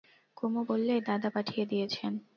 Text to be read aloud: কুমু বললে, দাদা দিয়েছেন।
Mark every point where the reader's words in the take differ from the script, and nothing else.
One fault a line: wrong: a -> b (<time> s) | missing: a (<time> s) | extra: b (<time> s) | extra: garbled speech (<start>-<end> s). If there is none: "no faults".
extra: পাঠিয়ে (1.3 s)